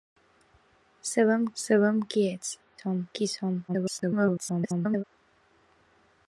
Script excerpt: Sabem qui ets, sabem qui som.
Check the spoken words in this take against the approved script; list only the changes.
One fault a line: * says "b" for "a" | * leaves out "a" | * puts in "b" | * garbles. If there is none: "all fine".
* puts in "sabem"
* says "som" for "sabem"
* garbles